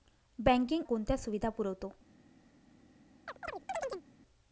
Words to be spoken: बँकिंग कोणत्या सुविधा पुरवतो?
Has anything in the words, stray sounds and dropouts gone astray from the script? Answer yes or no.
yes